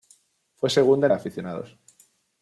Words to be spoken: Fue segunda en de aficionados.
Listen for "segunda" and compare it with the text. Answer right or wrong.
right